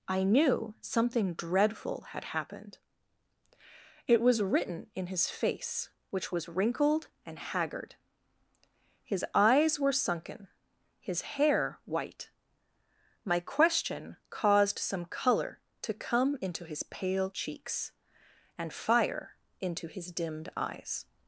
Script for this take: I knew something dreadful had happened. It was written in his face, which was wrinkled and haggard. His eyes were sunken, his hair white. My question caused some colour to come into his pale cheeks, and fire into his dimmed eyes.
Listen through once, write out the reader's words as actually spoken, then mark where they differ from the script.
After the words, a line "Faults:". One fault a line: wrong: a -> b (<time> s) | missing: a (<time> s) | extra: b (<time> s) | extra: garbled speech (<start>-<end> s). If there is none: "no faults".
I knew something dreadful had happened. It was written in his face, which was wrinkled and haggard. His eyes were sunken, his hair white. My question caused some colour to come into his pale cheeks, and fire into his dimmed eyes.
Faults:
no faults